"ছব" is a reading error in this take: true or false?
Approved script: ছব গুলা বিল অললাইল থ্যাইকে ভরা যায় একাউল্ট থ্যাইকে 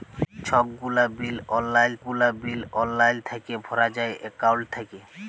false